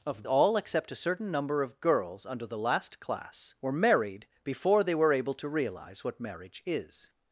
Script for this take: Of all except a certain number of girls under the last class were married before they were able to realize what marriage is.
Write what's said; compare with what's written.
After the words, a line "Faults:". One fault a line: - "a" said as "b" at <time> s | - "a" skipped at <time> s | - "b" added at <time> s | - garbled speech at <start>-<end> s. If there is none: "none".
Of all except a certain number of girls under the last class were married before they were able to realize what marriage is.
Faults:
none